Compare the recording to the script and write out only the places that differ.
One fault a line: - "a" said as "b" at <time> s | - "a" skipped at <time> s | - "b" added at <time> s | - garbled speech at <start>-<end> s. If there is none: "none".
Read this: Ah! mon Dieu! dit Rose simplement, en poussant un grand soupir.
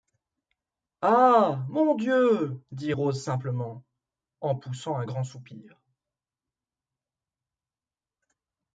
none